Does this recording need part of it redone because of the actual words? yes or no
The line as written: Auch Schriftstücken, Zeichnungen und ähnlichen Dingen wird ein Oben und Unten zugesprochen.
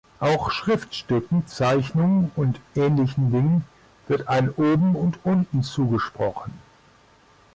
no